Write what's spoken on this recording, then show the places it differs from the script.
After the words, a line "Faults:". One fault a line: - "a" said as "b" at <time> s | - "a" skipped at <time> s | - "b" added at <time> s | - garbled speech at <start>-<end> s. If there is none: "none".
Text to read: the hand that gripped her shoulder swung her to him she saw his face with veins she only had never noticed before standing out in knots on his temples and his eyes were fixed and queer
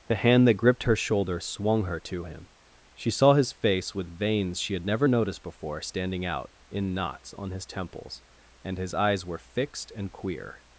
the hand that gripped her shoulder swung her to him she saw his face with veins she had never noticed before standing out in knots on his temples and his eyes were fixed and queer
Faults:
- "only" skipped at 4.7 s